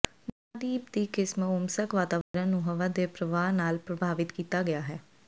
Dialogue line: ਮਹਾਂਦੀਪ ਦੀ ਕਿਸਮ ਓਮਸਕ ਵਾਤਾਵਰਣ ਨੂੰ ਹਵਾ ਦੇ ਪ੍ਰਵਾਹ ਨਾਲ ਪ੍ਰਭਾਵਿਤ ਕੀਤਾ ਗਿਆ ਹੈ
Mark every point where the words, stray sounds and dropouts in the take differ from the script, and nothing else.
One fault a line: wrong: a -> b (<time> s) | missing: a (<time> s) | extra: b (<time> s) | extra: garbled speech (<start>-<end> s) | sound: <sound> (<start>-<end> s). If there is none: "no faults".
sound: dropout (2.2-2.3 s)